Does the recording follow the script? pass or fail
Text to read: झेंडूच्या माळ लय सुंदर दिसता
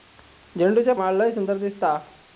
pass